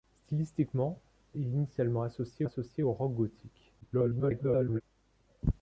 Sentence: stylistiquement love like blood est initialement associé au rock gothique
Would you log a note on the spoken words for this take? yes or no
yes